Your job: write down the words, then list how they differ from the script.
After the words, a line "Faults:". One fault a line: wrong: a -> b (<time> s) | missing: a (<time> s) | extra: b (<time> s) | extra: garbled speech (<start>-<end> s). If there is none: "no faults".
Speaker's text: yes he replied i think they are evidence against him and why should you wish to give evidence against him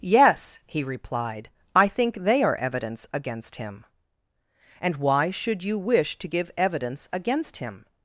yes he replied i think they are evidence against him and why should you wish to give evidence against him
Faults:
no faults